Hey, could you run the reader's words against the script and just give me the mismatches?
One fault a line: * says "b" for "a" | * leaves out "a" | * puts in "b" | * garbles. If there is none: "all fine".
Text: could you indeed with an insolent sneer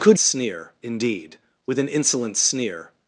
* says "sneer" for "you"